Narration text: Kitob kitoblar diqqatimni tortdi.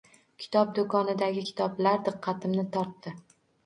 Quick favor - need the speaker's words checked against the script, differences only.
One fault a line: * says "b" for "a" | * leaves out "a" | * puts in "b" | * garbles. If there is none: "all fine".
* puts in "do'konidagi"